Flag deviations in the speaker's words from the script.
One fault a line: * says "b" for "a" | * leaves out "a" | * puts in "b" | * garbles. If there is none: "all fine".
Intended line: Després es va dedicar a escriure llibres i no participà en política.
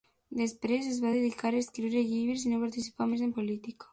* puts in "més"